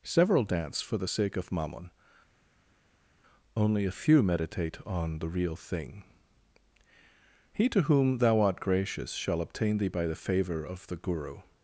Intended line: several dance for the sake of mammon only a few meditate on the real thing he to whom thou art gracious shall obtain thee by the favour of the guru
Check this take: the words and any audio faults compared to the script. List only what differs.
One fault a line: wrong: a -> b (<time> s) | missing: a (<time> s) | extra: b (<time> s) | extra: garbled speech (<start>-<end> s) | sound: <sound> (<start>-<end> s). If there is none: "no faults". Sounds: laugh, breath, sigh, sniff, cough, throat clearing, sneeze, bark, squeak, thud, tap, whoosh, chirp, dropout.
no faults